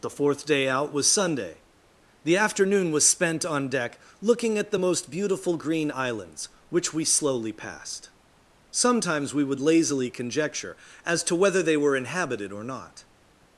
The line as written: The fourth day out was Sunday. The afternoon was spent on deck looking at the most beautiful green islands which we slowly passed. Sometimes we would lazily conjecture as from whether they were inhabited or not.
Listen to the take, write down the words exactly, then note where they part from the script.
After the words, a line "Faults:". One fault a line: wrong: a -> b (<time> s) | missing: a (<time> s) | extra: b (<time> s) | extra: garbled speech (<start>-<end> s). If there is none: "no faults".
The fourth day out was Sunday. The afternoon was spent on deck looking at the most beautiful green islands which we slowly passed. Sometimes we would lazily conjecture as to whether they were inhabited or not.
Faults:
wrong: from -> to (11.2 s)